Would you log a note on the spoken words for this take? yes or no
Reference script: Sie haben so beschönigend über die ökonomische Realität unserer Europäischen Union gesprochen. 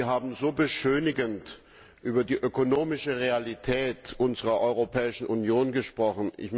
no